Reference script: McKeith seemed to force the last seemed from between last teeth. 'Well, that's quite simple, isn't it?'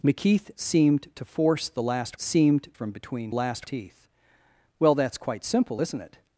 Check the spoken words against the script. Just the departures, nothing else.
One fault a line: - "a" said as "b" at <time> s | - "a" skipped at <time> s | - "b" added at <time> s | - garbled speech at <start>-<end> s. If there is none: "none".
none